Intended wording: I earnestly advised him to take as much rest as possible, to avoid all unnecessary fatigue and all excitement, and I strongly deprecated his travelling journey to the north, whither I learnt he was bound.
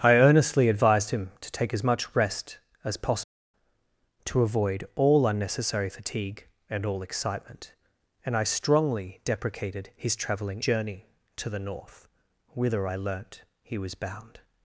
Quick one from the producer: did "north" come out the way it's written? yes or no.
yes